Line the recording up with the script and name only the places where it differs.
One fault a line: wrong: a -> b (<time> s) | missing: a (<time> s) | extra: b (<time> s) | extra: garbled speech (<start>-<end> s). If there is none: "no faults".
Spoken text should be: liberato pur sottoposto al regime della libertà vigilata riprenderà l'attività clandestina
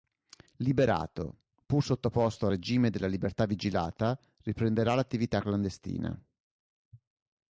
no faults